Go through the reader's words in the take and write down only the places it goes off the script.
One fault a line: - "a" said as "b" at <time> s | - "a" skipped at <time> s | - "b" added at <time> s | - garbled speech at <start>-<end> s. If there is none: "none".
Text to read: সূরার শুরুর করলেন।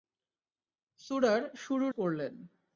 none